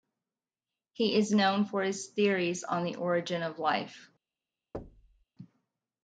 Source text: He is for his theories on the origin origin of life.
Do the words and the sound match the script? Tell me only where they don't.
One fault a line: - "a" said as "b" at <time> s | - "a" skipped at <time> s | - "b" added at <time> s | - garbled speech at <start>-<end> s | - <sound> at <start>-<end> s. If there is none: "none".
- "known" added at 1.3 s
- "origin" skipped at 3.4 s
- thud at 4.7-5.2 s